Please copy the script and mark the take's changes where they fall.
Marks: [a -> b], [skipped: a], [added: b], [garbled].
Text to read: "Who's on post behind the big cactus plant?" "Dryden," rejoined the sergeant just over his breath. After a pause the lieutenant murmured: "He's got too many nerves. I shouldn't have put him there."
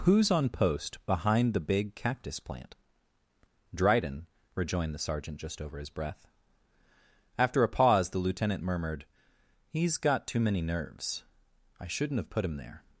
"Who's on post behind the big cactus plant?" "Dryden," rejoined the sergeant just over his breath. After a pause the lieutenant murmured: "He's got too many nerves. I shouldn't have put him there."